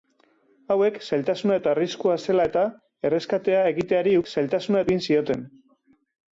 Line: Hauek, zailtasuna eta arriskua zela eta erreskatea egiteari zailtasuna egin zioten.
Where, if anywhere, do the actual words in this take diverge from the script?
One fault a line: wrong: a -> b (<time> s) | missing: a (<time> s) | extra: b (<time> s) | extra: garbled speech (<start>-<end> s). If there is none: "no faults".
no faults